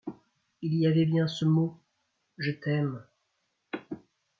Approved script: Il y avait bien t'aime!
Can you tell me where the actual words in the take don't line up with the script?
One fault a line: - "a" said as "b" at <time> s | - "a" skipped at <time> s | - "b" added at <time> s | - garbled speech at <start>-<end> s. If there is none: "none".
- "ce mot Je" added at 1.3 s